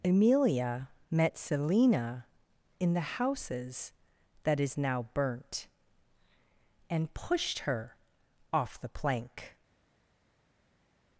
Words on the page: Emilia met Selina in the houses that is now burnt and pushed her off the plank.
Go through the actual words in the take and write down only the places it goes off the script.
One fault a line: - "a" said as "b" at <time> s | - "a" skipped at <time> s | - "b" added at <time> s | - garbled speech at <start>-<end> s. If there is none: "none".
none